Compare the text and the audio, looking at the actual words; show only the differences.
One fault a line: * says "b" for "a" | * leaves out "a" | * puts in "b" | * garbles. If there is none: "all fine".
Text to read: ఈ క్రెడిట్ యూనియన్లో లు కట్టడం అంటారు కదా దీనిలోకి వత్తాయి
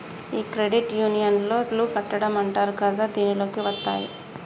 all fine